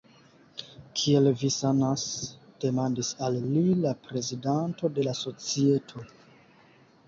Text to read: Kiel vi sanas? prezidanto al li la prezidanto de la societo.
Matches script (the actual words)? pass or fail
fail